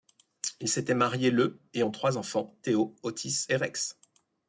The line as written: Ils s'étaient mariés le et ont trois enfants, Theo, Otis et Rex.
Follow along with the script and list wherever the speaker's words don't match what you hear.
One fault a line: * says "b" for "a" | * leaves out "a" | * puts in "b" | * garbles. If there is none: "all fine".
all fine